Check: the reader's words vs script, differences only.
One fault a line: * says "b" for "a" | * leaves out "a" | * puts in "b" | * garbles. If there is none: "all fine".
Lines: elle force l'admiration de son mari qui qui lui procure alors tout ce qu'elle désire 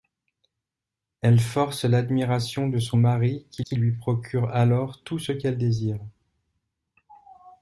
all fine